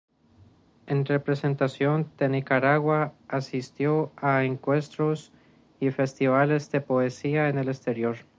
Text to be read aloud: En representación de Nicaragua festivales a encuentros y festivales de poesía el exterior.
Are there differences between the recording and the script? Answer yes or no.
yes